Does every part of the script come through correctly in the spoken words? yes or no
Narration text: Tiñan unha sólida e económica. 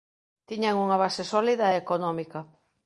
no